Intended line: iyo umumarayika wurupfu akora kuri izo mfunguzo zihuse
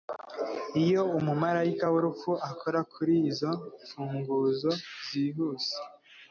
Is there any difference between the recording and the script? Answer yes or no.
no